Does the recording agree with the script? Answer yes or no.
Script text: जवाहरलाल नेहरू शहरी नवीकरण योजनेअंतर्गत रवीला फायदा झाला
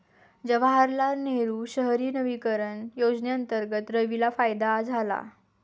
yes